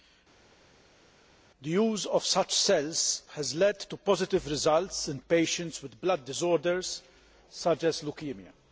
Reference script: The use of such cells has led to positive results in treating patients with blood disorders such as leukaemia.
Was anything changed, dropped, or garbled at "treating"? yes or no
yes